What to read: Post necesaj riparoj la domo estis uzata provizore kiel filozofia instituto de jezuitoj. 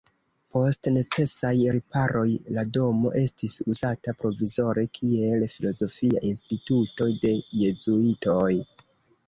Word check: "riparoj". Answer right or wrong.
right